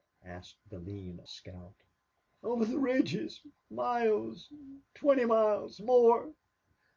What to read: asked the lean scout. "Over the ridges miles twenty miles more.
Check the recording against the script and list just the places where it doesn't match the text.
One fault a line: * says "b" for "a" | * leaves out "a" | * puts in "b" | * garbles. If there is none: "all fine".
all fine